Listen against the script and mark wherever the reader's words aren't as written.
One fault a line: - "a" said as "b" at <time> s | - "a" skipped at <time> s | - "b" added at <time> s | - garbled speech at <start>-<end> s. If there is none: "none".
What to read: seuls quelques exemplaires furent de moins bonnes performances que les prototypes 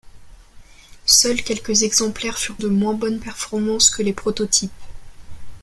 none